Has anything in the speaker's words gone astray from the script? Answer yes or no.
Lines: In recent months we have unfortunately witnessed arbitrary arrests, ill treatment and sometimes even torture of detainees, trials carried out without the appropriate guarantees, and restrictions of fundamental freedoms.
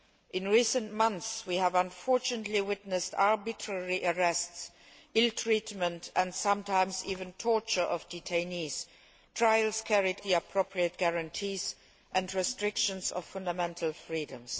yes